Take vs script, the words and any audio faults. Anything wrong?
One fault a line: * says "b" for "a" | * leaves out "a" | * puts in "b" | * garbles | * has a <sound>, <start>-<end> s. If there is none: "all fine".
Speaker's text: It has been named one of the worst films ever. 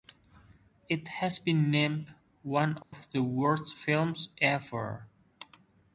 * has a dropout, 2.8-2.9 s